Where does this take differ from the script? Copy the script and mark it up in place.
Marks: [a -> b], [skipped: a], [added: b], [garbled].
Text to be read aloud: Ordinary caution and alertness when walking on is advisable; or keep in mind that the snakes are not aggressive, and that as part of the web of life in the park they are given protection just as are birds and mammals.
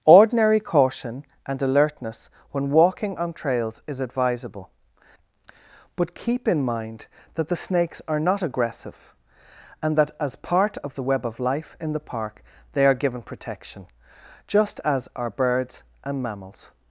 Ordinary caution and alertness when walking on [added: trails] is advisable; [or -> but] keep in mind that the snakes are not aggressive, and that as part of the web of life in the park they are given protection just as are birds and mammals.